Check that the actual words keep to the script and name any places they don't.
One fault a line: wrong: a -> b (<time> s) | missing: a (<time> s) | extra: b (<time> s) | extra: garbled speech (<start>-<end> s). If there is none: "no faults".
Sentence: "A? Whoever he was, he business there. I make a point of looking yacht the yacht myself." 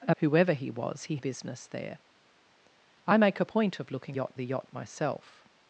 no faults